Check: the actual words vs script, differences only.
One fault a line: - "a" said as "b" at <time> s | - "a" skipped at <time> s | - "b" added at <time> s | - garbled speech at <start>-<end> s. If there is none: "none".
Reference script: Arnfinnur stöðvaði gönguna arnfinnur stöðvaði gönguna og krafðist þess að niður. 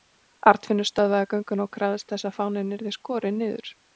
- "arnfinnur stöðvaði gönguna" skipped at 1.7 s
- "fáninn yrði skorinn" added at 2.4 s